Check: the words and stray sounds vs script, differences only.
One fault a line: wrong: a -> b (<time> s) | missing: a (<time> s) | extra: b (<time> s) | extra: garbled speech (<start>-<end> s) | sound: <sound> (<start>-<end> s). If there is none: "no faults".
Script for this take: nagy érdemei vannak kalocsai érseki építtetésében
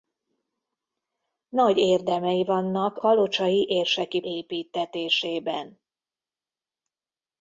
no faults